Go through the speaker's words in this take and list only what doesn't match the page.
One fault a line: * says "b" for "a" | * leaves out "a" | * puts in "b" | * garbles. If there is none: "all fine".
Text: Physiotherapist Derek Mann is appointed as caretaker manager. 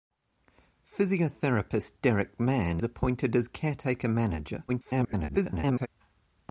* leaves out "is"
* garbles